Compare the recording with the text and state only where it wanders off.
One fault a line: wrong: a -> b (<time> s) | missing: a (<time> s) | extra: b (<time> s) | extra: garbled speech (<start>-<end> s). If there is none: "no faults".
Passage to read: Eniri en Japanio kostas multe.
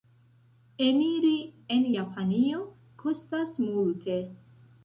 no faults